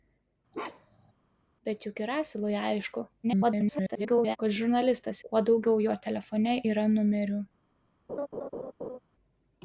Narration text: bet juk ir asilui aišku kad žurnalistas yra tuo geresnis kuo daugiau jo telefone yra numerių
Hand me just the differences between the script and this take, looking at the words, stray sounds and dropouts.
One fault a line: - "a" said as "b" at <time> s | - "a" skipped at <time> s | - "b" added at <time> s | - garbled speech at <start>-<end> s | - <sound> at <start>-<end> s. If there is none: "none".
- bark at 0.5-1.1 s
- garbled speech at 3.2-4.4 s
- "yra tuo geresnis" skipped at 5.2 s
- laugh at 8.1-9.0 s